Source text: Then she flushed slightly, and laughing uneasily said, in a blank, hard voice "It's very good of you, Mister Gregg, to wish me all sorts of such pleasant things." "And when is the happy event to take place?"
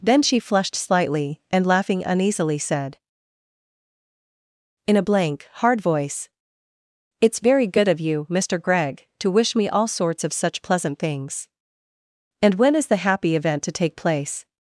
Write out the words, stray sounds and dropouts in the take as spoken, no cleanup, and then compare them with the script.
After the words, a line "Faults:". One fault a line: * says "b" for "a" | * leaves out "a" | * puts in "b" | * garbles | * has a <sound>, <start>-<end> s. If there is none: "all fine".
Then she flushed slightly, and laughing uneasily said, in a blank, hard voice "It's very good of you, Mister Gregg, to wish me all sorts of such pleasant things." "And when is the happy event to take place?"
Faults:
all fine